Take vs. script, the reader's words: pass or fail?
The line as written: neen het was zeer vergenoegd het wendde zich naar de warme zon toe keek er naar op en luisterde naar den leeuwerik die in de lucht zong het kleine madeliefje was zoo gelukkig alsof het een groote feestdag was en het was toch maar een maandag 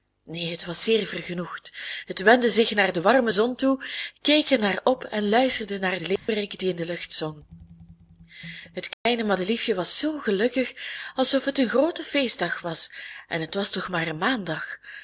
pass